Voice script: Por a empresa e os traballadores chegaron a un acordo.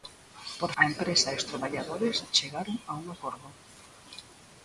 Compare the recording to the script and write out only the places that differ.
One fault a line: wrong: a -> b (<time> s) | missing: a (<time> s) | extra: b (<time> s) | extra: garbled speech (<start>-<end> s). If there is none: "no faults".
no faults